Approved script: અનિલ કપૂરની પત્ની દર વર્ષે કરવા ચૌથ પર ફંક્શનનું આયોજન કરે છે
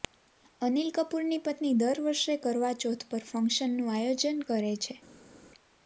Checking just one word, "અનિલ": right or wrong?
right